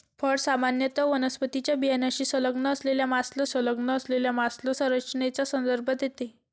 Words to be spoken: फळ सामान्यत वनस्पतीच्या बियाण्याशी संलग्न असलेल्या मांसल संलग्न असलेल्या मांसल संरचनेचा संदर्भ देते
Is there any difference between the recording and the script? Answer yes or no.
no